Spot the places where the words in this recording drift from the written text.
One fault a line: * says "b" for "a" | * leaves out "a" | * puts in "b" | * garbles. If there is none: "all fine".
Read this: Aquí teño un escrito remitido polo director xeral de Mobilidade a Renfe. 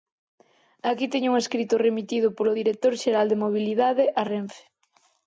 all fine